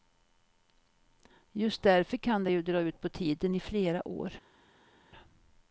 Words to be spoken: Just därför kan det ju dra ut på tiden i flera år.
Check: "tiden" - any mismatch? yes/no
no